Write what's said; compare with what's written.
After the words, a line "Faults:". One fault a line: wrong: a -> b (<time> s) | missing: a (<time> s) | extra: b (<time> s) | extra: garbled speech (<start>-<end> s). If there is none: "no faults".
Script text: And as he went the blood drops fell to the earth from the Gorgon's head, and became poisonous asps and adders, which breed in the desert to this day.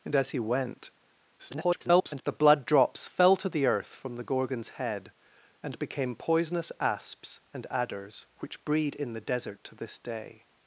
And as he went [garbled] the blood drops fell to the earth from the Gorgon's head, and became poisonous asps and adders, which breed in the desert to this day.
Faults:
extra: garbled speech (1.4-2.2 s)